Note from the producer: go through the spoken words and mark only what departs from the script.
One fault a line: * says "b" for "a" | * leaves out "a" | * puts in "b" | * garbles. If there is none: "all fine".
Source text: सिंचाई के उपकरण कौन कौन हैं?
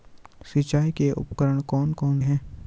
all fine